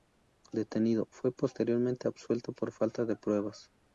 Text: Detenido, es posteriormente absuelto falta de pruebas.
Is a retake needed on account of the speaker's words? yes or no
yes